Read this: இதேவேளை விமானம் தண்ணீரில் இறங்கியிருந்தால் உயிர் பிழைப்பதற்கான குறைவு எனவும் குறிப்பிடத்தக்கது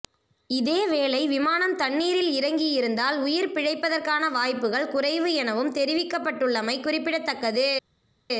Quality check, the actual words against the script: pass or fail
fail